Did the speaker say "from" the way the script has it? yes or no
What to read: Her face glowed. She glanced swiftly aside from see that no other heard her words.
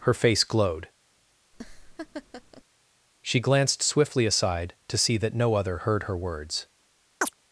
no